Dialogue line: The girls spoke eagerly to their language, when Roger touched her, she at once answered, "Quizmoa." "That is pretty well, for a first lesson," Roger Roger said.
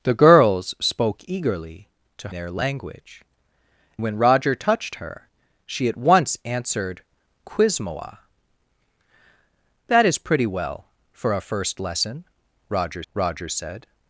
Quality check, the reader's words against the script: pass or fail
pass